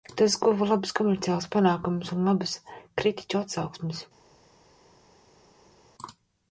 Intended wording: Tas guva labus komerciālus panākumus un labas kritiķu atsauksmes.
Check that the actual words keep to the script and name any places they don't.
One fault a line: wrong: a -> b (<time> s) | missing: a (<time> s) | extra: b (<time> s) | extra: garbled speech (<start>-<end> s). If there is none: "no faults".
no faults